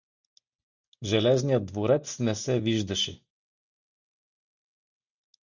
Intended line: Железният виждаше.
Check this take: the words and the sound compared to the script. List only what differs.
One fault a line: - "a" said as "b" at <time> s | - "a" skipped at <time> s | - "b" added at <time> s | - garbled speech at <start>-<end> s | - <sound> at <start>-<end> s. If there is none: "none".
- "дворец не се" added at 1.6 s